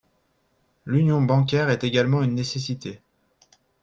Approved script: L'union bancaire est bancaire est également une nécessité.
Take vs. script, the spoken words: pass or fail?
fail